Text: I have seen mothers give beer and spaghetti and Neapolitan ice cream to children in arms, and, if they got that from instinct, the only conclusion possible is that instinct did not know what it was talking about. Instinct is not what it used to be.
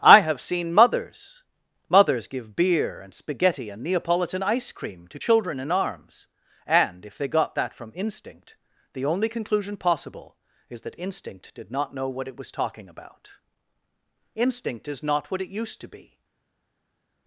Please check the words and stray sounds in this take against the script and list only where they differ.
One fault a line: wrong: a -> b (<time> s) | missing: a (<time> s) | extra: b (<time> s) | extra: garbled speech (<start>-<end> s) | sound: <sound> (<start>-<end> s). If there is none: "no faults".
extra: mothers (1.9 s)